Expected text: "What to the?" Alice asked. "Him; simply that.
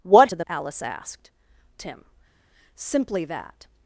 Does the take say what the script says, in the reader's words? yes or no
yes